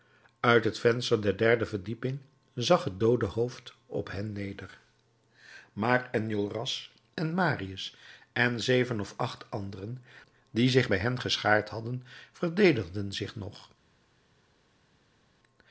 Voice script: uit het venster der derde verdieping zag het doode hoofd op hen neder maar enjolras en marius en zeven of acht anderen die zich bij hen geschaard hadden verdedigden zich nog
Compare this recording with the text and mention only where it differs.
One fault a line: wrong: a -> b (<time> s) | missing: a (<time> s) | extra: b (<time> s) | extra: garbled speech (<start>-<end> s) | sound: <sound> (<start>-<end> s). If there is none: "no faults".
no faults